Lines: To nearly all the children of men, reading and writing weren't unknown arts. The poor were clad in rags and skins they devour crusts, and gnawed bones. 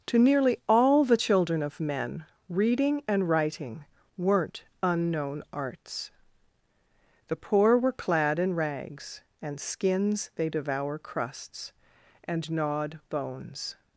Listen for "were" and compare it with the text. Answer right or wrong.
right